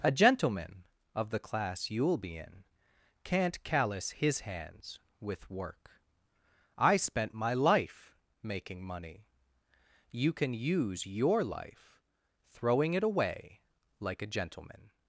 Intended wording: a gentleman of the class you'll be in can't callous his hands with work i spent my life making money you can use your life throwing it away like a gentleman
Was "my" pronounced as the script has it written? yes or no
yes